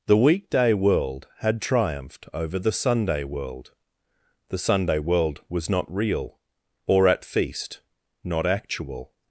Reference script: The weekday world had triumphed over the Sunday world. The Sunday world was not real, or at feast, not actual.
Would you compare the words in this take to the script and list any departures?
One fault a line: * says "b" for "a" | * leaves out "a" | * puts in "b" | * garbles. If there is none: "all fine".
all fine